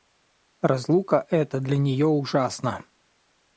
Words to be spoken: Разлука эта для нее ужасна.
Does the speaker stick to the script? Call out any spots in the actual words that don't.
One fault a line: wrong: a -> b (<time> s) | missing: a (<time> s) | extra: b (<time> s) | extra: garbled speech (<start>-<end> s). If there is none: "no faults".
no faults